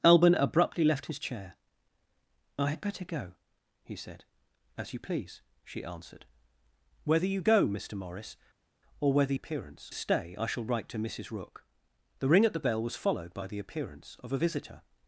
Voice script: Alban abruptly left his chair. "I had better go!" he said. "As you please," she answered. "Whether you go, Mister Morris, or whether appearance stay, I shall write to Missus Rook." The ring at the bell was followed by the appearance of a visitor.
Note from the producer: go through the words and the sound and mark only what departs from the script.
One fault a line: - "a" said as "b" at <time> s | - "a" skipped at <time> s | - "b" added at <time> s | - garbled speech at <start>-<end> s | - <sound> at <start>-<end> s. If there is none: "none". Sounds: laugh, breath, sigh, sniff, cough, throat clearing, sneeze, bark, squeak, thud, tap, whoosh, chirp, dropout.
none